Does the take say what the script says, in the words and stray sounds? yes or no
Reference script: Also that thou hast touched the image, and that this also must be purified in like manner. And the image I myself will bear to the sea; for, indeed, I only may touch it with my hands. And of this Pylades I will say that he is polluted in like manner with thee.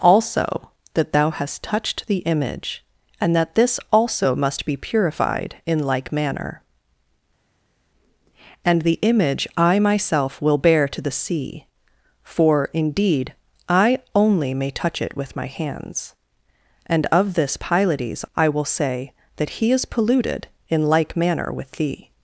yes